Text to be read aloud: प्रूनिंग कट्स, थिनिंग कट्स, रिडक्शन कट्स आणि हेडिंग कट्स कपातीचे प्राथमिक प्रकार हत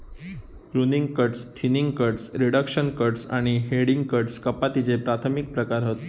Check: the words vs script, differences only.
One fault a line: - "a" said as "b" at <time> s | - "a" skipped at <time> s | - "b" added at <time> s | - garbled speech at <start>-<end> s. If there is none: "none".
none